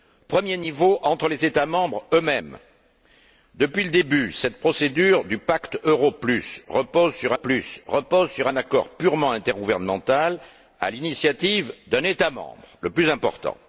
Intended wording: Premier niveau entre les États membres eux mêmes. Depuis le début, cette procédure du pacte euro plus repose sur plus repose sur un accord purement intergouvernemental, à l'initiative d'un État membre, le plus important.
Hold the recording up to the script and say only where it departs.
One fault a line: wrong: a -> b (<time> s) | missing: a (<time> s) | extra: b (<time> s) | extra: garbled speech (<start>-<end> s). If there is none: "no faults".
no faults